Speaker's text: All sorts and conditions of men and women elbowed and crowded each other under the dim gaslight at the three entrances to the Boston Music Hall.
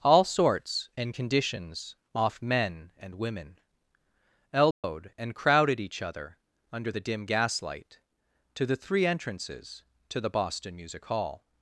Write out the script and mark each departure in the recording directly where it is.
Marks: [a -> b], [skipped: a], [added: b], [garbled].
All sorts and conditions [of -> off] men and women elbowed and crowded each other under the dim gaslight [at -> to] the three entrances to the Boston Music Hall.